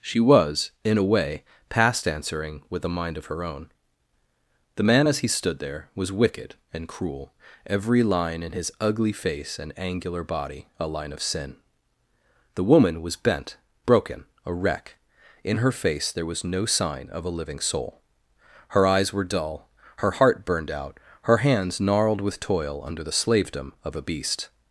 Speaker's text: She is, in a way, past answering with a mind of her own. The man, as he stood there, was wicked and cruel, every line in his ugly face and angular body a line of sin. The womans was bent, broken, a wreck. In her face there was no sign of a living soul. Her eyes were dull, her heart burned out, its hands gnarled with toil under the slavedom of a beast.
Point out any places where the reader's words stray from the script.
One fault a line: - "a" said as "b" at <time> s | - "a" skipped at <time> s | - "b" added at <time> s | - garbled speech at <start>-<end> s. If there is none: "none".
- "is" said as "was" at 0.2 s
- "womans" said as "woman" at 12.6 s
- "its" said as "her" at 21.2 s